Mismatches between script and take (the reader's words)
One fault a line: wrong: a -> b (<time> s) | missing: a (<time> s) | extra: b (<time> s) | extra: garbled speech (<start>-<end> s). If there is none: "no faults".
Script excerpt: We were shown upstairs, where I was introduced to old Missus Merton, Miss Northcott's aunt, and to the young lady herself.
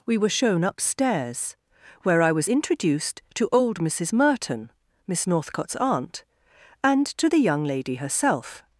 no faults